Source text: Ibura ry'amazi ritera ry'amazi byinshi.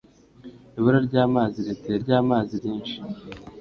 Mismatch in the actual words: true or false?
false